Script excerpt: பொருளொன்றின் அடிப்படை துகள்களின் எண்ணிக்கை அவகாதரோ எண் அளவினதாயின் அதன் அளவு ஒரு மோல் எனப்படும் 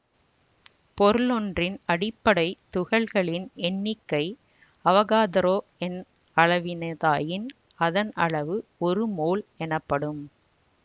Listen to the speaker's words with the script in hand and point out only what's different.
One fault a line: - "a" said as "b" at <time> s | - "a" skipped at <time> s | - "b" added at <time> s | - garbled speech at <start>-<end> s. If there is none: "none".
none